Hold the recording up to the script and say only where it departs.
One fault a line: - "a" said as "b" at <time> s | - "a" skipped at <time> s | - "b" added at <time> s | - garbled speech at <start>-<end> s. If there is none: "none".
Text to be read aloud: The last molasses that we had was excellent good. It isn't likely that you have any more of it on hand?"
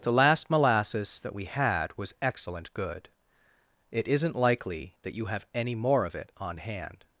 none